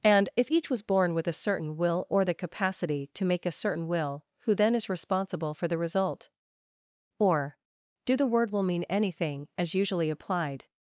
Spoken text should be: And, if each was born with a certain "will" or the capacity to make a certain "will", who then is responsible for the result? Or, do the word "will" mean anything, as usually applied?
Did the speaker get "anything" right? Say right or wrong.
right